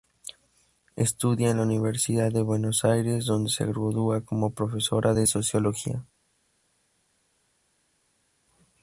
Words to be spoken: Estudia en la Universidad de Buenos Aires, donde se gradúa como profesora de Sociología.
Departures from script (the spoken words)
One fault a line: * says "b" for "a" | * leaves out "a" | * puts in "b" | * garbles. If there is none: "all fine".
all fine